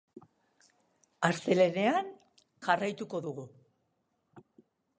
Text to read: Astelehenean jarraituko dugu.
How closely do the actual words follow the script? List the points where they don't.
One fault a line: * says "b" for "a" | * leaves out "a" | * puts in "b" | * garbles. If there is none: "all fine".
all fine